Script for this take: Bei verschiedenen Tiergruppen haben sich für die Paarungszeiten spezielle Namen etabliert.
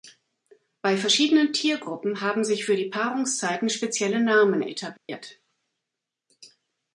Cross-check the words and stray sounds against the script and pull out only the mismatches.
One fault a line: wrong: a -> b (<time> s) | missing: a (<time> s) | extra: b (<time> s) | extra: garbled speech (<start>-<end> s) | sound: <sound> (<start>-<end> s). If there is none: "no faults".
sound: dropout (5.0-5.1 s)